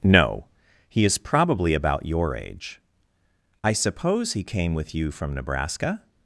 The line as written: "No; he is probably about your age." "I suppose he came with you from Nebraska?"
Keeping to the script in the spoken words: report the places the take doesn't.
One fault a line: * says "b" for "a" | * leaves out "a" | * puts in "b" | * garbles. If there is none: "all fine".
all fine